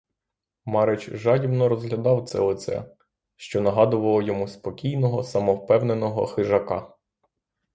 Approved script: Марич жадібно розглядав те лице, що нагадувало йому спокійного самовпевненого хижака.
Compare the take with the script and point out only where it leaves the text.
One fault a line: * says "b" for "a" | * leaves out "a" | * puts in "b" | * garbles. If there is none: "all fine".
* says "це" for "те"